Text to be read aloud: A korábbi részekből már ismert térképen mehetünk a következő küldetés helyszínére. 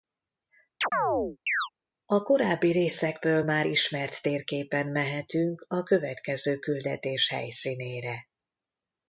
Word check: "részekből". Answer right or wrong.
right